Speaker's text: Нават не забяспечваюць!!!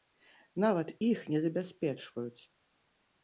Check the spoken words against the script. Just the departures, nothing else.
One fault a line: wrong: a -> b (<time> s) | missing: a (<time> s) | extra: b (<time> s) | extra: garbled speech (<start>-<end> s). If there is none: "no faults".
extra: іх (1.1 s)